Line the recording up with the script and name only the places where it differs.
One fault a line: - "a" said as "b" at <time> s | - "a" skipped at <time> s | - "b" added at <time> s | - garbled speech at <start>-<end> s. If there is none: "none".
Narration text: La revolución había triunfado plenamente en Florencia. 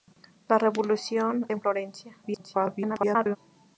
- "había triunfado plenamente" skipped at 1.5 s
- garbled speech at 2.2-3.4 s